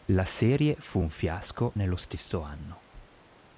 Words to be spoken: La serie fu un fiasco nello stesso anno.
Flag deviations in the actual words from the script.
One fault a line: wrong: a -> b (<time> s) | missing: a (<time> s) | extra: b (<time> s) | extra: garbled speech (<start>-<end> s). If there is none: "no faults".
no faults